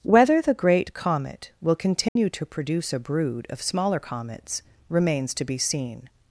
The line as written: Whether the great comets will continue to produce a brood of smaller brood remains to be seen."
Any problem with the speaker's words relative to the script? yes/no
yes